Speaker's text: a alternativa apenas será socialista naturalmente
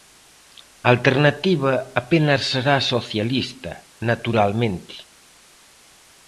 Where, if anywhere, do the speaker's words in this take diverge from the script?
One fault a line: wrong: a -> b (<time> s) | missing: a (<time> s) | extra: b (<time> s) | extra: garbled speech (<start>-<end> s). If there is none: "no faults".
no faults